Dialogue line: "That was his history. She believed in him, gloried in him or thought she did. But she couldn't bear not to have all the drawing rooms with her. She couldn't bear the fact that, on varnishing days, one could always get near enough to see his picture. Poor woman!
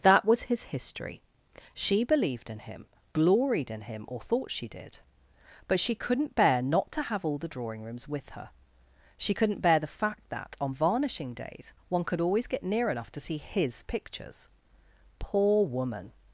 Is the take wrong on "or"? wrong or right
right